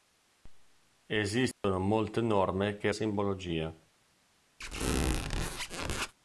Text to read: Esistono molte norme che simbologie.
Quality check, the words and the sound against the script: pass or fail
fail